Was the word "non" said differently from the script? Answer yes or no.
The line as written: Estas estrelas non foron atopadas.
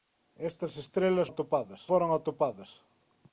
yes